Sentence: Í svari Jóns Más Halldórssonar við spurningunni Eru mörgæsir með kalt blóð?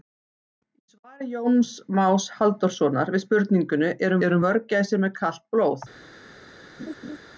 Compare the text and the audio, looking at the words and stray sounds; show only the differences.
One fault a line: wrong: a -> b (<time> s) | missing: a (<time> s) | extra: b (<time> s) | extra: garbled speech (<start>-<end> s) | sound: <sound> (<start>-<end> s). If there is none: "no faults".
extra: Eru (4.3 s)
sound: laugh (6.8-7.2 s)